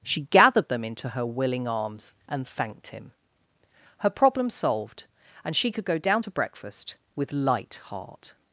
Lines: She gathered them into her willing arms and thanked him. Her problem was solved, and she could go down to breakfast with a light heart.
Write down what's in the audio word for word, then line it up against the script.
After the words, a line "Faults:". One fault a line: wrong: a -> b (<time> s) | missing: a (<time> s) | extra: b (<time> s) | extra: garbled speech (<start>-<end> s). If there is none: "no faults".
She gathered them into her willing arms and thanked him. Her problem solved, and she could go down to breakfast with light heart.
Faults:
missing: was (4.5 s)
missing: a (7.3 s)